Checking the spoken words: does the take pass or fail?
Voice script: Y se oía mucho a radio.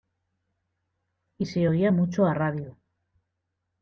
pass